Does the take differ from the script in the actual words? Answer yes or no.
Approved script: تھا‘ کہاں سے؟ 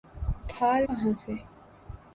no